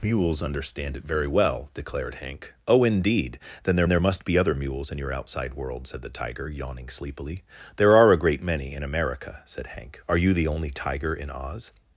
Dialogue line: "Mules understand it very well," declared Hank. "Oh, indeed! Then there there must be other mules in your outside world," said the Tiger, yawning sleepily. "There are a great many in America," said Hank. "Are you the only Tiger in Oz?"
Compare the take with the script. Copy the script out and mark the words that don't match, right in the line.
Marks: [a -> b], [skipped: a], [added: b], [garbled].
"Mules understand it very well," declared Hank. "Oh, indeed! Then there there must be other mules in your outside world," said the Tiger, yawning sleepily. "There are a great many in America," said Hank. "Are you the only Tiger in Oz?"